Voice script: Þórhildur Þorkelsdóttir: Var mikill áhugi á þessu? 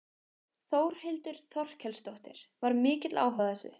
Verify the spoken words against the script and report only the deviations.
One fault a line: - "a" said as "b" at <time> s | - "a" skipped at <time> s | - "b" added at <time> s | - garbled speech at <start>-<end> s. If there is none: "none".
none